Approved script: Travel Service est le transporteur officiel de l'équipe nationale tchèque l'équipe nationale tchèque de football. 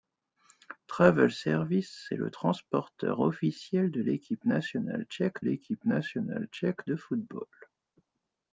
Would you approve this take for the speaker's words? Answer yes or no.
yes